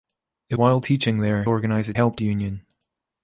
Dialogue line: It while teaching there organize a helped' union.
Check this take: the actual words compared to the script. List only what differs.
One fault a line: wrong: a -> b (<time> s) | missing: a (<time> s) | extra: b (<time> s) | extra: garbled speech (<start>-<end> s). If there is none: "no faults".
no faults